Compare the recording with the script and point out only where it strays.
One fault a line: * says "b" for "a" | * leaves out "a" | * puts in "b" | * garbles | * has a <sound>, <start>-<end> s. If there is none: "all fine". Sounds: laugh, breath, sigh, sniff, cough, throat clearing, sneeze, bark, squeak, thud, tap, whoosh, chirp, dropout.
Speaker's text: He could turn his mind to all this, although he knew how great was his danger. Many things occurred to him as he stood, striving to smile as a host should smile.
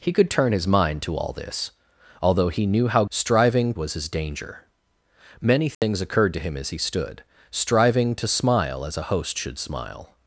* says "striving" for "great"
* has a dropout, 5.7-5.8 s